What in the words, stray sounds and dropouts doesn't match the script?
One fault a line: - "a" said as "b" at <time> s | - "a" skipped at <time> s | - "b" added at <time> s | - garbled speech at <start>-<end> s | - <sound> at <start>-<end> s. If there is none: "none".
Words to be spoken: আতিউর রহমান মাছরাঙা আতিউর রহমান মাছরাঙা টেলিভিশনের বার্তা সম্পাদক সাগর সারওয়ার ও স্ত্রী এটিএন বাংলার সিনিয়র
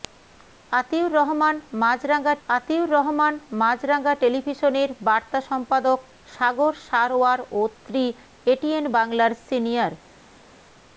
none